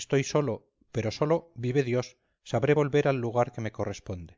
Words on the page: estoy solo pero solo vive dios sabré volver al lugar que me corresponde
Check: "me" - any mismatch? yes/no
no